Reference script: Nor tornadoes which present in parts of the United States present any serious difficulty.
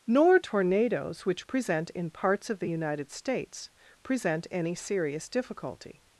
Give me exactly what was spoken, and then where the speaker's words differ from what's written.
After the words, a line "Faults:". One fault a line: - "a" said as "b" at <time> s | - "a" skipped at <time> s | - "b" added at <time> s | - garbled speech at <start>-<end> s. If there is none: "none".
Nor tornadoes which present in parts of the United States present any serious difficulty.
Faults:
none